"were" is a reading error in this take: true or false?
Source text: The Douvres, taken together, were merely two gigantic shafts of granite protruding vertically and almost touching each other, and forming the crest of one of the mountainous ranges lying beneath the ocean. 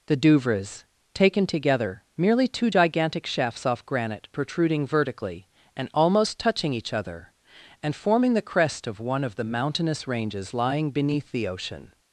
true